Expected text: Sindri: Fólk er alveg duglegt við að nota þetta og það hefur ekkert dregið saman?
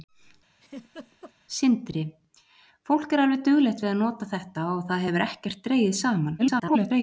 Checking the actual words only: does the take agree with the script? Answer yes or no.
no